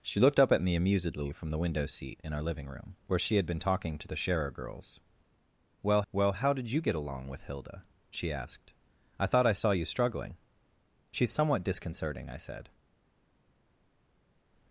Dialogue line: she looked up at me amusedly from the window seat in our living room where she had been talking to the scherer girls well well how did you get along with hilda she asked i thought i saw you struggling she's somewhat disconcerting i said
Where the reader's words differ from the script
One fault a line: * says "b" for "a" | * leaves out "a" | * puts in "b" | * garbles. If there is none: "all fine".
all fine